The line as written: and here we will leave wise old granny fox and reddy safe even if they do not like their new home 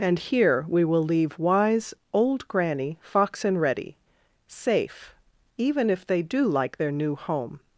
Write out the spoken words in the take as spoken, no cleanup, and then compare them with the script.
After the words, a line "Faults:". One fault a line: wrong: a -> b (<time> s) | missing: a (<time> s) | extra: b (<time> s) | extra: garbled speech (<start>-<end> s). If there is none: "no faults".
and here we will leave wise old granny fox and reddy safe even if they do like their new home
Faults:
missing: not (6.5 s)